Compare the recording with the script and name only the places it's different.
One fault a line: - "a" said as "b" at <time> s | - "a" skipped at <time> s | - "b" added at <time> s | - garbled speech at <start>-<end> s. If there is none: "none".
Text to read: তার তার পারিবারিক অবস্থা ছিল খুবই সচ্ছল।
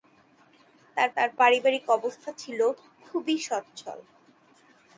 none